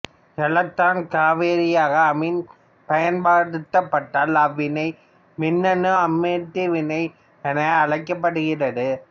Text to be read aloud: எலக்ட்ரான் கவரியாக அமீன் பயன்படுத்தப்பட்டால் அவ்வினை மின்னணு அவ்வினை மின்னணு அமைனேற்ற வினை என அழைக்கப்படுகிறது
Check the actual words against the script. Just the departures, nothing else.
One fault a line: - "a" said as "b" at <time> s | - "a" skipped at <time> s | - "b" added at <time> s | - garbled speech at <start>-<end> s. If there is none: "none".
- "அவ்வினை மின்னணு" skipped at 5.9 s